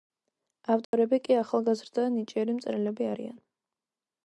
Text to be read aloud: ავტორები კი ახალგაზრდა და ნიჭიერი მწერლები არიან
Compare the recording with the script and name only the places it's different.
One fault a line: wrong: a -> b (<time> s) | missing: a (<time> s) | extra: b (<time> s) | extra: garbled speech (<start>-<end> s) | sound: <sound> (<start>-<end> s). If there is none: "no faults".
sound: dropout (0.8-0.9 s)